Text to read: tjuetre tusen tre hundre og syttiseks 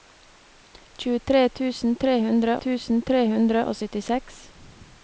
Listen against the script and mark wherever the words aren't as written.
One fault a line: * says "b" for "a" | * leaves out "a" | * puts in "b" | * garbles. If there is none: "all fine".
* puts in "tusen tre hundre"